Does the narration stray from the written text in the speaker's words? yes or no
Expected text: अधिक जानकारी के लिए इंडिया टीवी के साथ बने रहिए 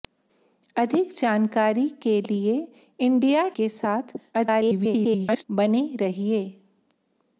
yes